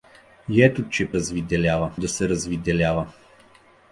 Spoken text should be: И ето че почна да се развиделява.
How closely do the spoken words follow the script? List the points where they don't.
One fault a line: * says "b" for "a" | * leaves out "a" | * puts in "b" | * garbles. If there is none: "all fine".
* says "развиделява" for "почна"